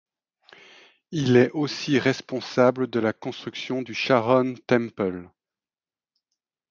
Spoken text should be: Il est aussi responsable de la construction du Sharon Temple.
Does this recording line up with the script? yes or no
yes